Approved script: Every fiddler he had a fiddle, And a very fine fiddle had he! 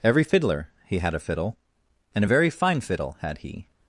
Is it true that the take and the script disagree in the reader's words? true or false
false